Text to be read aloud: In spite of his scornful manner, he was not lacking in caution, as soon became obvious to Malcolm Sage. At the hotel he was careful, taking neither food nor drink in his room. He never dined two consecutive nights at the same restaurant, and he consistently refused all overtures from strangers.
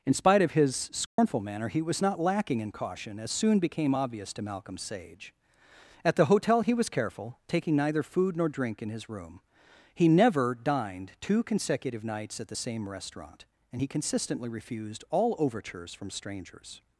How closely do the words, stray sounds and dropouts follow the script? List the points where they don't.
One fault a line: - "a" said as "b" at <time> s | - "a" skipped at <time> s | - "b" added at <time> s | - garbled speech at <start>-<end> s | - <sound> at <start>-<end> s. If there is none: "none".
- dropout at 1.1-1.2 s